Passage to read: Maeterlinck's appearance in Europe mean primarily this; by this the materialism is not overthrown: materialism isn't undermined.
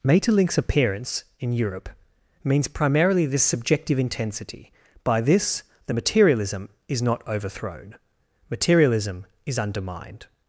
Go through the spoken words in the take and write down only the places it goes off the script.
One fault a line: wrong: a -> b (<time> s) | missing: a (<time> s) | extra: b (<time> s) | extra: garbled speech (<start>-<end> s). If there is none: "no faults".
wrong: mean -> means (2.4 s)
extra: subjective intensity (3.4 s)
wrong: isn't -> is (9.5 s)